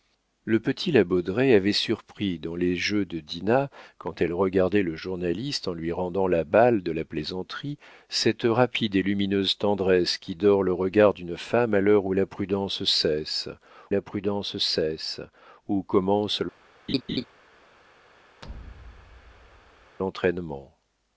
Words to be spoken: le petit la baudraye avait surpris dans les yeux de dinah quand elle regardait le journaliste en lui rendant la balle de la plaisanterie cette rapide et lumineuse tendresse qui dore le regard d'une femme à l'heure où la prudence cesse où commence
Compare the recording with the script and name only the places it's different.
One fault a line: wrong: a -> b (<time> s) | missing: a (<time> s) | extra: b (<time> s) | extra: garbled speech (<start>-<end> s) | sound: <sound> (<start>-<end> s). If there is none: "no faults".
extra: la prudence cesse (13.9 s)
sound: laugh (16.9-17.2 s)
sound: thud (18.4-20.0 s)